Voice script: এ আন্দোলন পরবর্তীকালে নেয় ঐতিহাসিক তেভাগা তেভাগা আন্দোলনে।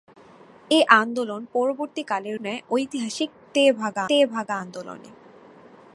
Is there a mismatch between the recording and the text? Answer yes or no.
no